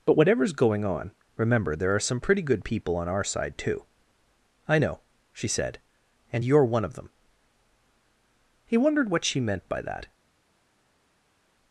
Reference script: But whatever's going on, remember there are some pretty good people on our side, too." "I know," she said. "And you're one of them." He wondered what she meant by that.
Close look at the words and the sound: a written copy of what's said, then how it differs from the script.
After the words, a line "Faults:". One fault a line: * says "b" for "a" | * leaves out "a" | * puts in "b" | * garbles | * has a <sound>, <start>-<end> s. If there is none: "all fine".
But whatever's going on, remember there are some pretty good people on our side, too." "I know," she said. "And you're one of them." He wondered what she meant by that.
Faults:
all fine